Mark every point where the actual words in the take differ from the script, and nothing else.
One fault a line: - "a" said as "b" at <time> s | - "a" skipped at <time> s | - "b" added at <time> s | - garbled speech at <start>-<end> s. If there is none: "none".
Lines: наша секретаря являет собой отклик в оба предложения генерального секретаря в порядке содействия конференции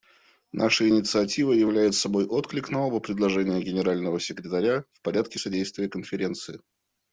- "секретаря" said as "инициатива" at 0.9 s
- "в" said as "на" at 2.7 s